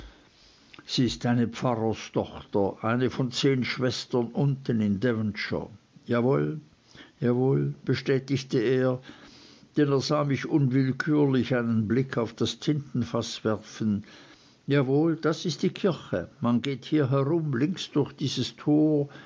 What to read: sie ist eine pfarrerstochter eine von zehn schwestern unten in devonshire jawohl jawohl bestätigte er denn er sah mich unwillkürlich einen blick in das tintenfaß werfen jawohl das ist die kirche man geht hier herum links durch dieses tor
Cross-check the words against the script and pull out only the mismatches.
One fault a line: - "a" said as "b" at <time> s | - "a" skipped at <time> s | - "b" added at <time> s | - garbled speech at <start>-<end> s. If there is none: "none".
- "in" said as "auf" at 12.2 s